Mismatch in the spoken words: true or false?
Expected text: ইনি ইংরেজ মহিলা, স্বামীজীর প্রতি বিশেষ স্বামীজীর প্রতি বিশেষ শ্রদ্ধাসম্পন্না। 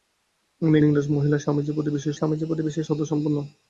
false